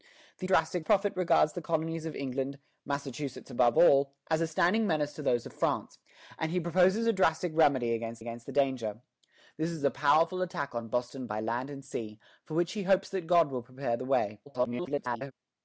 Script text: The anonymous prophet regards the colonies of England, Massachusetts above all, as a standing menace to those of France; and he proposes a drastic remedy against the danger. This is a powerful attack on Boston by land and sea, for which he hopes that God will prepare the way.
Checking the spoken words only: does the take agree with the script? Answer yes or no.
no